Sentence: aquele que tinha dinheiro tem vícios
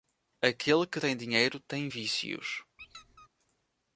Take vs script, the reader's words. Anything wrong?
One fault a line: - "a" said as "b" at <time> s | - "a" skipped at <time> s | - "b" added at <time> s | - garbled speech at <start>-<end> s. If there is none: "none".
- "tinha" said as "tem" at 0.9 s